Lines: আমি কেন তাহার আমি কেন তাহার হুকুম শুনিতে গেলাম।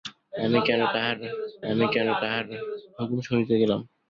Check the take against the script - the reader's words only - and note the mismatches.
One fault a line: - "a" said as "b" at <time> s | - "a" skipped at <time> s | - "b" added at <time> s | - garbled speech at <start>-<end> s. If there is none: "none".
none